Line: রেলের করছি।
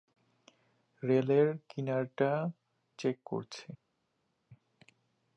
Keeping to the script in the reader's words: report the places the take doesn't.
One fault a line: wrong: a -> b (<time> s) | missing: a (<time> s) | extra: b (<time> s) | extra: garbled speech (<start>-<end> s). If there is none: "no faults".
extra: কিনারাটা চেক (1.7 s)